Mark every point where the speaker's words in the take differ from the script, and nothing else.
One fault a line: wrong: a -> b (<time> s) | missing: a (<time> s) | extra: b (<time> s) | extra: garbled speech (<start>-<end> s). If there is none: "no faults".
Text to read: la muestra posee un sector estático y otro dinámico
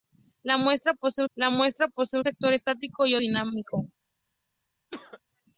extra: la muestra posee (1.3 s)
missing: otro (3.2 s)